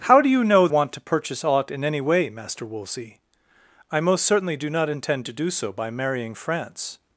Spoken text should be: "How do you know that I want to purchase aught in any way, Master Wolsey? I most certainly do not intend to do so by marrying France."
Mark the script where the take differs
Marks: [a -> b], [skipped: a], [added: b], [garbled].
"How do you know [skipped: that I] want to purchase aught in any way, Master Wolsey? I most certainly do not intend to do so by marrying France."